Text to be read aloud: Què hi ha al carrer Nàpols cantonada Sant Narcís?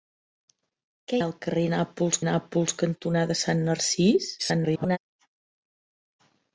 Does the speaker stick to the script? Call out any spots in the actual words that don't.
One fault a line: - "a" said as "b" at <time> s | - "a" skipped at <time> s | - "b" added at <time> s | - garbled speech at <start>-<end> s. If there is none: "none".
- "hi" skipped at 1.2 s
- "Nàpols" added at 2.3 s
- garbled speech at 4.4-5.0 s